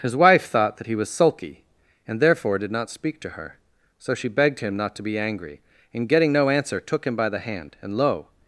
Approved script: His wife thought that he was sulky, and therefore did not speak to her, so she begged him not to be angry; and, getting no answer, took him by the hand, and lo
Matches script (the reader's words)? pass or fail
pass